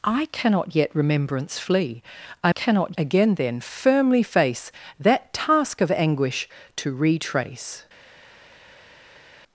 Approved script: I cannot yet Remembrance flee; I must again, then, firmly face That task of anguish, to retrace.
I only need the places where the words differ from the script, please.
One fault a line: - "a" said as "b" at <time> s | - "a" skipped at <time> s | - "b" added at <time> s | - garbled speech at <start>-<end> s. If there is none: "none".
- "must" said as "cannot" at 2.5 s